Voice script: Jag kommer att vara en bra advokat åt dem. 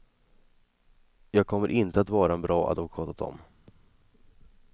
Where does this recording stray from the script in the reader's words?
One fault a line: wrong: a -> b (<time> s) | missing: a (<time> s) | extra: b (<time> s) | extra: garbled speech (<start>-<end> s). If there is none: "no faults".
extra: inte (1.7 s)